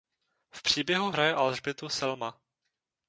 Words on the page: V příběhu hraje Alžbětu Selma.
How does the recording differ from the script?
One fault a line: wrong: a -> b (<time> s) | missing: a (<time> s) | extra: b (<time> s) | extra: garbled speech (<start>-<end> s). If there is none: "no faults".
no faults